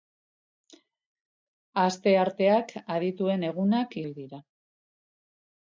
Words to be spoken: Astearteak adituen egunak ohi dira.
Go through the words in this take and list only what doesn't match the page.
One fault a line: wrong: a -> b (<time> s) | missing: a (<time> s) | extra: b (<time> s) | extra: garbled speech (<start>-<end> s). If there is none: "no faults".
no faults